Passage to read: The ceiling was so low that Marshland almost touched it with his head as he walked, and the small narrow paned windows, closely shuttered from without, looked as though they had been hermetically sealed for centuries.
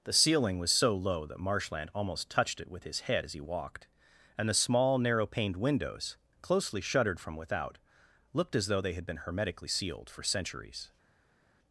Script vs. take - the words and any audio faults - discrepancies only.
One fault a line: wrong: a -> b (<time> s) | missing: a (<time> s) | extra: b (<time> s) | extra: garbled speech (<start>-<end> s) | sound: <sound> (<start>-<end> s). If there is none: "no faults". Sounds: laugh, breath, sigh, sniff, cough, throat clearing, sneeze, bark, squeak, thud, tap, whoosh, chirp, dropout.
no faults